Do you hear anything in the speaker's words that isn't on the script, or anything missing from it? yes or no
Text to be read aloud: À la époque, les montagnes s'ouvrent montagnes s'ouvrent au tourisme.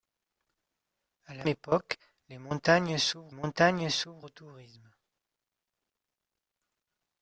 no